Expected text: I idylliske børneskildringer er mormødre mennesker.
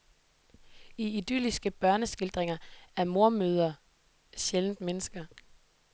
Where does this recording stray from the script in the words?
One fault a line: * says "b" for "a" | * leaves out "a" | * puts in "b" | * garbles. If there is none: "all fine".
* puts in "sjældent"